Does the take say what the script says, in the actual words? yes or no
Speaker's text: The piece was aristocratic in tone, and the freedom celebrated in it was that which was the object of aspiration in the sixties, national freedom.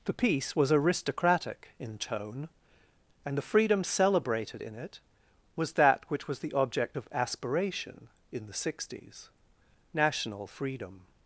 yes